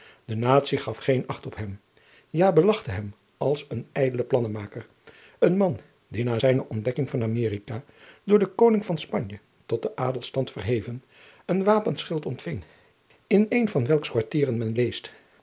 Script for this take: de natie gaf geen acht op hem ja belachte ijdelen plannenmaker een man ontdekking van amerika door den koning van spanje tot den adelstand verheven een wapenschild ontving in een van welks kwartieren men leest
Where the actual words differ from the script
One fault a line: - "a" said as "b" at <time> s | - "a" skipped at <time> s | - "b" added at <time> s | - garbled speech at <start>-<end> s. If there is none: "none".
- "hem als een" added at 2.9 s
- "die na zijne" added at 6.1 s